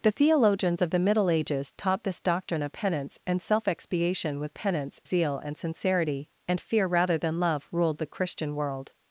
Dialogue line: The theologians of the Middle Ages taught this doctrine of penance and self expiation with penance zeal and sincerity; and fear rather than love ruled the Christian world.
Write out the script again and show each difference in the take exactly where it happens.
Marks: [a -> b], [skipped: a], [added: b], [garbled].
The theologians of the Middle Ages taught this doctrine of penance and self expiation with penance zeal and sincerity; and fear rather than love ruled the Christian world.